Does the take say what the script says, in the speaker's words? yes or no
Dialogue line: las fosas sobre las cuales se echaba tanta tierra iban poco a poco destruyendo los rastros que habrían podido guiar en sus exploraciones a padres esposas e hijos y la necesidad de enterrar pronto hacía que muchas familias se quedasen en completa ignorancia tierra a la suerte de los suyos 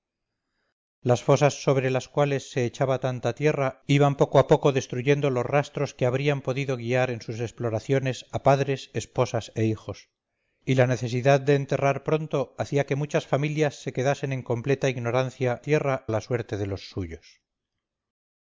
yes